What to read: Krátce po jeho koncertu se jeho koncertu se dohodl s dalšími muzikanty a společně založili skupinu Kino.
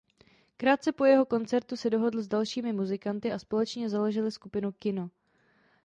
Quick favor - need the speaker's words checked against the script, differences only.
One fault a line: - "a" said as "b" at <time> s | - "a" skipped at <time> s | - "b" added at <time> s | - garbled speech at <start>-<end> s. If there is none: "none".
- "jeho koncertu se" skipped at 1.9 s